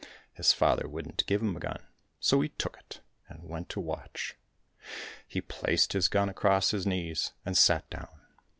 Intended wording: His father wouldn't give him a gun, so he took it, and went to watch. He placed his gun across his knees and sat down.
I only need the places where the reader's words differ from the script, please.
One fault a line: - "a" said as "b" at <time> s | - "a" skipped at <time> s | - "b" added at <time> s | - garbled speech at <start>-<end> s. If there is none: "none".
none